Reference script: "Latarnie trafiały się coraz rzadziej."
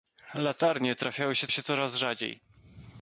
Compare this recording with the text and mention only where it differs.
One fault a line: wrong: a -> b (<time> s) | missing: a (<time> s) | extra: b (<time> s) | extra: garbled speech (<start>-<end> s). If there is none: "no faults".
extra: się (1.5 s)